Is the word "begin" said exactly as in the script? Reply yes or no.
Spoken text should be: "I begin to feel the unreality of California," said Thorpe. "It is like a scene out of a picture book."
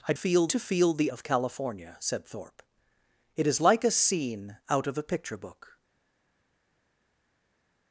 no